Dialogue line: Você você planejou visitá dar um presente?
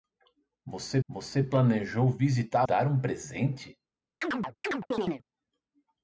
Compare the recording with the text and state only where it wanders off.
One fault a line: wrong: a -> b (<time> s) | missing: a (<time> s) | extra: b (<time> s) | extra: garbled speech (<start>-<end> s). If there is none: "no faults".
no faults